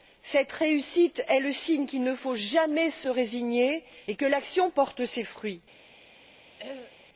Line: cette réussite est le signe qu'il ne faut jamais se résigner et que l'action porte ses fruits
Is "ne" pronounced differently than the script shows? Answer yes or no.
no